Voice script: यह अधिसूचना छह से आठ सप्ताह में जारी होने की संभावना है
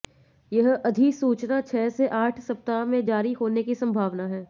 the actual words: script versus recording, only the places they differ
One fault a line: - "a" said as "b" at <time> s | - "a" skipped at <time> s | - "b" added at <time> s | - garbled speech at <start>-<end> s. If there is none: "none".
none